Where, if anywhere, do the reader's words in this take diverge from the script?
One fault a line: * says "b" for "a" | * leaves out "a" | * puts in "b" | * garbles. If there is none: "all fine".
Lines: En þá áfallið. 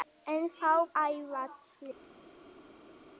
all fine